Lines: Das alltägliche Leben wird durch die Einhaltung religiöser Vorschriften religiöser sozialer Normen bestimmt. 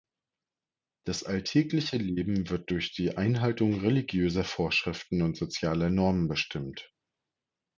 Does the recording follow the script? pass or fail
fail